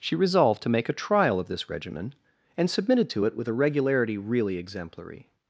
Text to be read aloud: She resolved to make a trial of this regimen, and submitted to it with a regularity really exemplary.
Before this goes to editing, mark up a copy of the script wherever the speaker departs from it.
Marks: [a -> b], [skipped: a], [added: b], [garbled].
She resolved to make a trial of this regimen, and submitted to it with a regularity really exemplary.